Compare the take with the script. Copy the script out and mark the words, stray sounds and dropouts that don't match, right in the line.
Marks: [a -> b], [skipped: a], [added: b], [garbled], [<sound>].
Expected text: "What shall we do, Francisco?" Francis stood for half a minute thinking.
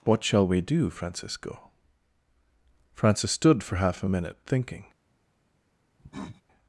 "What shall we do, Francisco?" Francis stood for half a minute thinking. [cough]